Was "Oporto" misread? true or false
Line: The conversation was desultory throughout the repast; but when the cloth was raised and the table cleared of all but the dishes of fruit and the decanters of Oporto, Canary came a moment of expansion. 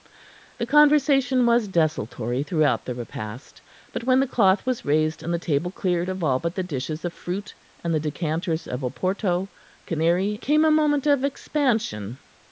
false